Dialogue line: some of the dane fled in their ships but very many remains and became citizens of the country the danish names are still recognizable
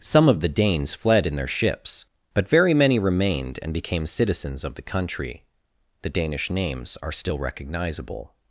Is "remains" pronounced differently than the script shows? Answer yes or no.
yes